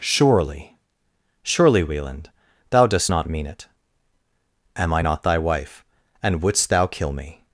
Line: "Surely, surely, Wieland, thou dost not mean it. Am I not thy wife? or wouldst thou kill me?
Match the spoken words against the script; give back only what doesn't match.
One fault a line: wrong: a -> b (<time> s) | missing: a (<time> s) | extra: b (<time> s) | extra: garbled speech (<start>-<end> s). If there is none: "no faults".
wrong: or -> and (6.2 s)